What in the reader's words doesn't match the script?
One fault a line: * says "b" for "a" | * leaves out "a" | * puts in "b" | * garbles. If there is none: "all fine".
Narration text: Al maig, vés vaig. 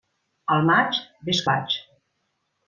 all fine